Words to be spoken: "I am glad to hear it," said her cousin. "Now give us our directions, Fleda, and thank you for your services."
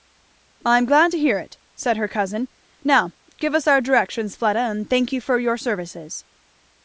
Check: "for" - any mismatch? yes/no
no